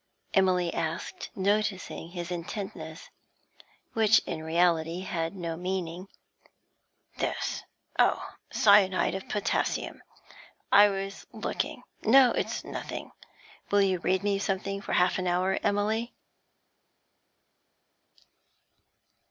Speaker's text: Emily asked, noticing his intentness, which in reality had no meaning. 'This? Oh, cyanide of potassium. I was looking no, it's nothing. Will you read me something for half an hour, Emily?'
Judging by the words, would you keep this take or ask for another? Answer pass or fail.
pass